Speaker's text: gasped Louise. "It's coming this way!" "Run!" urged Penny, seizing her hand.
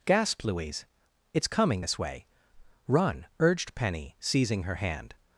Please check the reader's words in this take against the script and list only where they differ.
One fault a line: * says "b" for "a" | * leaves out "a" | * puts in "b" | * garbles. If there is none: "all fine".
all fine